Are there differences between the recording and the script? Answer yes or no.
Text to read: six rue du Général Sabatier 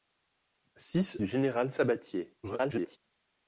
yes